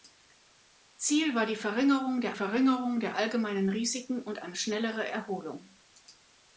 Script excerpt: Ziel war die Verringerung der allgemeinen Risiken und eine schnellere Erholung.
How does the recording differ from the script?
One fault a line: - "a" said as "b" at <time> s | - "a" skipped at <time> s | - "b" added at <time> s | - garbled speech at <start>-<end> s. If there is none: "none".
- "Verringerung der" added at 2.3 s